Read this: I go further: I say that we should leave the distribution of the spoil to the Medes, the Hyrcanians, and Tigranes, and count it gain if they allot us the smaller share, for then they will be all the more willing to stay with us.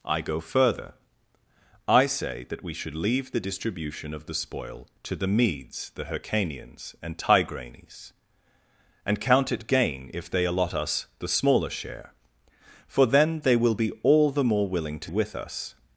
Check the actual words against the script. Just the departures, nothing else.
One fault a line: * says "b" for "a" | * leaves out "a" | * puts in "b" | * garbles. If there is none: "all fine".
* leaves out "stay"